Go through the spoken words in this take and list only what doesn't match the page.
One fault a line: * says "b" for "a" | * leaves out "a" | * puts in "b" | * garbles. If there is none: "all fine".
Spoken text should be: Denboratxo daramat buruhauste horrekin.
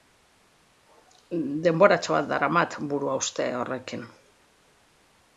* puts in "bat"